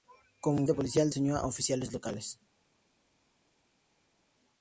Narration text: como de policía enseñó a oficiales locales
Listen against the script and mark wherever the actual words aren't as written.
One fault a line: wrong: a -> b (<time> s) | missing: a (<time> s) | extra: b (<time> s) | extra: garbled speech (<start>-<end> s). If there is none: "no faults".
no faults